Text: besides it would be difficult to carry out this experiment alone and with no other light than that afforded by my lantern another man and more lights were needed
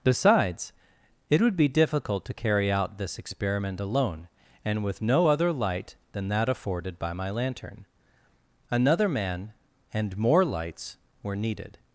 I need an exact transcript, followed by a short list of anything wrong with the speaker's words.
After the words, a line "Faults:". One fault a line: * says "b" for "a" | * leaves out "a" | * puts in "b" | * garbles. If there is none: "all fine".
besides it would be difficult to carry out this experiment alone and with no other light than that afforded by my lantern another man and more lights were needed
Faults:
all fine